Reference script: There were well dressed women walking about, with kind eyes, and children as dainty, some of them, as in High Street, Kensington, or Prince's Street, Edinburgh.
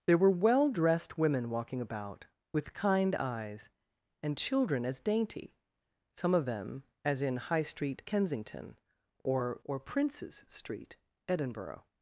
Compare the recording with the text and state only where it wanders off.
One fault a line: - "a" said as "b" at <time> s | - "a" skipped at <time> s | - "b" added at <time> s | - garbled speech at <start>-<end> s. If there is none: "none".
- "or" added at 9.6 s